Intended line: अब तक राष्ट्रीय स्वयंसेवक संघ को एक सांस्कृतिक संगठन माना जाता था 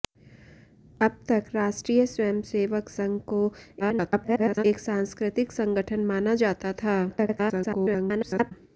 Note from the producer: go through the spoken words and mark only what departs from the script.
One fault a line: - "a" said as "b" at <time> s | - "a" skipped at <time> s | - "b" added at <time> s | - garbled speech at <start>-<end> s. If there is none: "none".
- garbled speech at 3.8-4.6 s
- garbled speech at 7.1-8.5 s